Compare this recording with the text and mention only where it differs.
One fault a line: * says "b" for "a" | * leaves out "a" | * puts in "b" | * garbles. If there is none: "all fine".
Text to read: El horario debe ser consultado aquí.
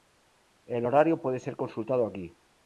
* says "puede" for "debe"